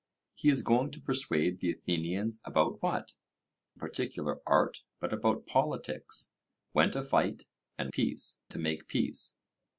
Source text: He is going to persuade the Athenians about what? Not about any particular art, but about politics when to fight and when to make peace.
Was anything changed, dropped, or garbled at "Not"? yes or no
yes